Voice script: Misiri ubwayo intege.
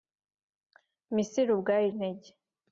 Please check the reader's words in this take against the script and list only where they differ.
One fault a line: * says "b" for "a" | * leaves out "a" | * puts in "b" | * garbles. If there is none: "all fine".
all fine